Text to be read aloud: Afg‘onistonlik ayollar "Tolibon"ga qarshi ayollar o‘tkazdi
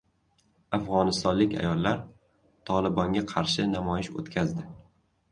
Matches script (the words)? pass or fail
fail